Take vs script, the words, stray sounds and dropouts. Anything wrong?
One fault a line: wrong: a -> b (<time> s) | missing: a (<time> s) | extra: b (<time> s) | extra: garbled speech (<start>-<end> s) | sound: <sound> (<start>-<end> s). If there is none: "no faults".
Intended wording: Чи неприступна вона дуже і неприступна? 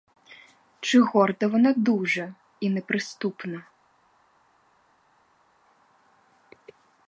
wrong: неприступна -> горда (1.0 s)